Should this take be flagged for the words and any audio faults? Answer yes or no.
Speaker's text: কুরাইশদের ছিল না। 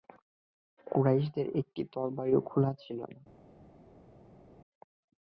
yes